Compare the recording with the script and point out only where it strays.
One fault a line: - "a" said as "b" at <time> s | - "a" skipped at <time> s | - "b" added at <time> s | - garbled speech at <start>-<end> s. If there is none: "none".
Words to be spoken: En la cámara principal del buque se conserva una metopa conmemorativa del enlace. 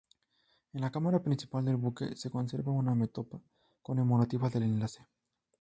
none